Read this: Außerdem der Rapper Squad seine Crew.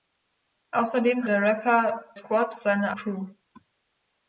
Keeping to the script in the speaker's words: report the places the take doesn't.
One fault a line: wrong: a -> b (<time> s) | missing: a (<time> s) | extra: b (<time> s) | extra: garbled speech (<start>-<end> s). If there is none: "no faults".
no faults